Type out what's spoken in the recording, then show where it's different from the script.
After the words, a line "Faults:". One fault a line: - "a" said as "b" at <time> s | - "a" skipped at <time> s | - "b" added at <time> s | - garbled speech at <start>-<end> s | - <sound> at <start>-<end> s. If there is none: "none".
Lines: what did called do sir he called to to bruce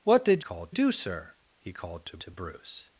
what did called do sir he called to to bruce
Faults:
none